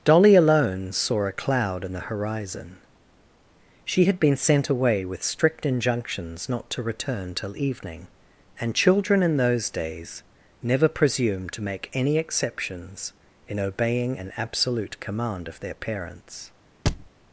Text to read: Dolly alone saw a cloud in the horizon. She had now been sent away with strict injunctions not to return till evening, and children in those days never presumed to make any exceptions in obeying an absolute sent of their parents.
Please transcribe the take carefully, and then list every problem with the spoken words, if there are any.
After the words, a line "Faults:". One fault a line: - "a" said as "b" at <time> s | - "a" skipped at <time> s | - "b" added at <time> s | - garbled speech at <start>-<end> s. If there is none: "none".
Dolly alone saw a cloud in the horizon. She had been sent away with strict injunctions not to return till evening, and children in those days never presumed to make any exceptions in obeying an absolute command of their parents.
Faults:
- "now" skipped at 4.2 s
- "sent" said as "command" at 15.0 s